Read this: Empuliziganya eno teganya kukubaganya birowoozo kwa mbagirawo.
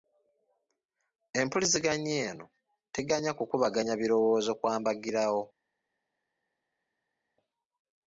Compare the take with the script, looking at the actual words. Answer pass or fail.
pass